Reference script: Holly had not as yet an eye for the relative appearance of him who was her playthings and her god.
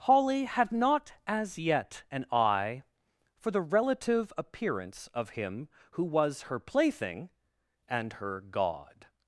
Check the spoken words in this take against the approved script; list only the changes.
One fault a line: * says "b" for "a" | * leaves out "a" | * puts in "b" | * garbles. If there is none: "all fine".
* says "plaything" for "playthings"